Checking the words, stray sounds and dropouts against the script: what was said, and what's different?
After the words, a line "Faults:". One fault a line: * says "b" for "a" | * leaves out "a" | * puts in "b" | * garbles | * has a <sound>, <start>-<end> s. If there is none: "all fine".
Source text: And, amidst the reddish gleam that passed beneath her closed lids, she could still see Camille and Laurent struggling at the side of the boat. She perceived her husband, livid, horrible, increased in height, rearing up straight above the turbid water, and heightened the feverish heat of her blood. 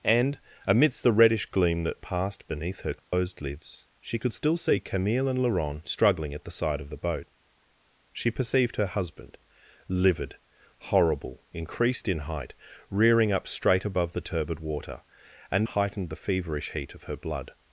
And, amidst the reddish gleam that passed beneath her closed lids, she could still see Camille and Laurent struggling at the side of the boat. She perceived her husband, livid, horrible, increased in height, rearing up straight above the turbid water, and heightened the feverish heat of her blood.
Faults:
* has a dropout, 3.0-3.1 s